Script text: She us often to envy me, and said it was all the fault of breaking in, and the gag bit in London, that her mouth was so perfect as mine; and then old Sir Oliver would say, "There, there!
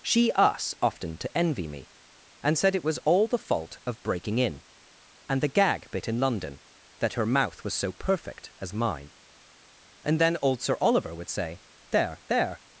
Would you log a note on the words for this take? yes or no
no